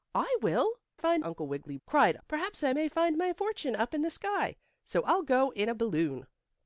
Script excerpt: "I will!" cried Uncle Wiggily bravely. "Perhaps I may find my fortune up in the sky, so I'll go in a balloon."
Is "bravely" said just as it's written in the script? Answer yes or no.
no